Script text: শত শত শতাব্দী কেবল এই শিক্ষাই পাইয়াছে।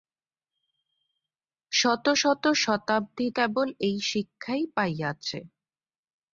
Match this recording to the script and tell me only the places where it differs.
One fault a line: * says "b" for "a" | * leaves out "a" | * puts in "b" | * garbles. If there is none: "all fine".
all fine